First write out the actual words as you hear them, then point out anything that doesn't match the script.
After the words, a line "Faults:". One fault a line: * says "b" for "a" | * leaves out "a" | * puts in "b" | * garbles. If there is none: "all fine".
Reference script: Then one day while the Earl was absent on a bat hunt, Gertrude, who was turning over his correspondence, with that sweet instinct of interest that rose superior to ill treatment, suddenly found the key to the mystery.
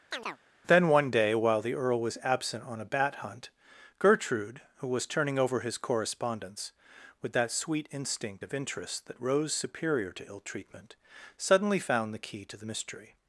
Then one day while the Earl was absent on a bat hunt, Gertrude, who was turning over his correspondence, with that sweet instinct of interest that rose superior to ill treatment, suddenly found the key to the mystery.
Faults:
all fine